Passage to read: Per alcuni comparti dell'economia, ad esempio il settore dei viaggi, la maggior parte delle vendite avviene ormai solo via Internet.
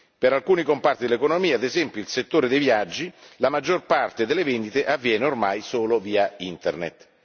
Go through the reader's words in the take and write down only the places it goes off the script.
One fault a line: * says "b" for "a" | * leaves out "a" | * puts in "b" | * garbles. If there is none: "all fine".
all fine